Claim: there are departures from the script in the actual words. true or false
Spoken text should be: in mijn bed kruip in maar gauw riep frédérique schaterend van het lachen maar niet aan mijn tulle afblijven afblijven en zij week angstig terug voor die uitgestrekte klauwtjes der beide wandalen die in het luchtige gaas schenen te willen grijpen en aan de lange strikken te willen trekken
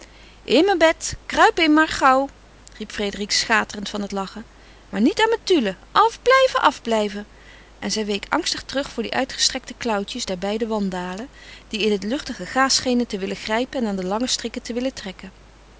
false